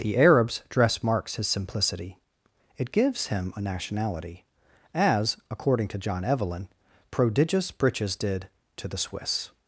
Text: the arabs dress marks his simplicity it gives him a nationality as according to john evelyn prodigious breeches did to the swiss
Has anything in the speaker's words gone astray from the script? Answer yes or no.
no